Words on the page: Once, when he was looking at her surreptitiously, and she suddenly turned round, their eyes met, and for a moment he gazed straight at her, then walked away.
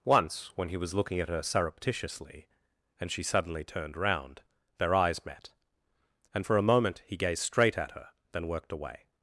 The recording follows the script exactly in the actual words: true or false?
false